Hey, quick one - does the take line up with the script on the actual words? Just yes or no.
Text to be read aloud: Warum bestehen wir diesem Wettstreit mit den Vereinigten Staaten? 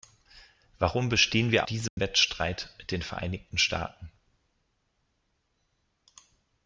yes